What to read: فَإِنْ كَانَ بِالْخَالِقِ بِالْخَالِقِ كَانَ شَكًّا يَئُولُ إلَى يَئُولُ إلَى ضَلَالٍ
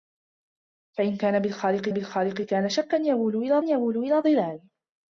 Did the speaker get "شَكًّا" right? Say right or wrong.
right